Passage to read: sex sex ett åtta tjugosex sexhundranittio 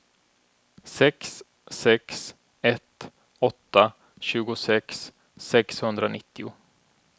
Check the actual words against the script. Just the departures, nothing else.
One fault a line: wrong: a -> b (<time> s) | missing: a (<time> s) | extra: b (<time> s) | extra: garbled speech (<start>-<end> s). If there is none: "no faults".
no faults